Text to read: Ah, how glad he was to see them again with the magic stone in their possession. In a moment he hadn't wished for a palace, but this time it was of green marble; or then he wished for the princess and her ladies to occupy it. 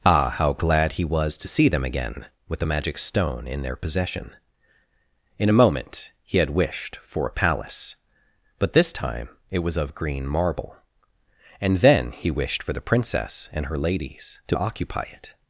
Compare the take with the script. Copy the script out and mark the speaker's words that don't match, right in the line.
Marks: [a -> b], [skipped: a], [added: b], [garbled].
Ah, how glad he was to see them again with the magic stone in their possession. In a moment he [hadn't -> had] wished for a palace, but this time it was of green marble; [or -> and] then he wished for the princess and her ladies to occupy it.